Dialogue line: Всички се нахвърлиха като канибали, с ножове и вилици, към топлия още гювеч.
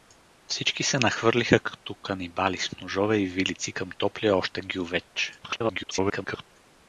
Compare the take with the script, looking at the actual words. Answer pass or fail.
fail